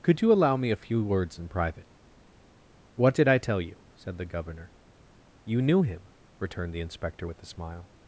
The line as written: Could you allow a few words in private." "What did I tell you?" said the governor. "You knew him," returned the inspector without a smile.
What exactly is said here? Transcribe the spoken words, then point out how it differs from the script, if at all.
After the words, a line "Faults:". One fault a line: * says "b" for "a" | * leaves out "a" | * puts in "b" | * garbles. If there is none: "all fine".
Could you allow me a few words in private." "What did I tell you?" said the governor. "You knew him," returned the inspector with a smile.
Faults:
* puts in "me"
* says "with" for "without"